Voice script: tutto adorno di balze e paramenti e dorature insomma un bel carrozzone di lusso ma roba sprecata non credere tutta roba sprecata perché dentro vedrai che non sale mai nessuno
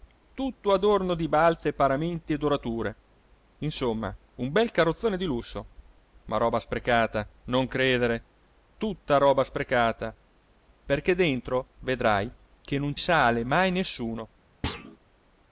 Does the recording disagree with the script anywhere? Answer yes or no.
no